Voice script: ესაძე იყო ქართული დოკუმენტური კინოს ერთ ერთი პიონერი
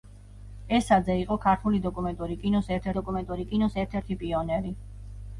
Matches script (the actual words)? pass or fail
fail